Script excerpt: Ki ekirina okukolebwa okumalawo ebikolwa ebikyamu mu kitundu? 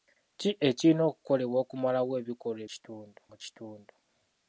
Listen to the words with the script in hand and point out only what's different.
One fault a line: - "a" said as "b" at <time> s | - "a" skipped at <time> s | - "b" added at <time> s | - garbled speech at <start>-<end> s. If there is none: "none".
- "ebikyamu" said as "kitundu" at 2.7 s